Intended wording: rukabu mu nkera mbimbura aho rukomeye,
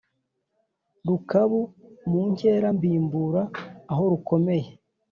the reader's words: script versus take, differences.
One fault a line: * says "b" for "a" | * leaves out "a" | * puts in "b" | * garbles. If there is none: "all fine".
all fine